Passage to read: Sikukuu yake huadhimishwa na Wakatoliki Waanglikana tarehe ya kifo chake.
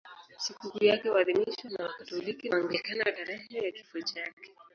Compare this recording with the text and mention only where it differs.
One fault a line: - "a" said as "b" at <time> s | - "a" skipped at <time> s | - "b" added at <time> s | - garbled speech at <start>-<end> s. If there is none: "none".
none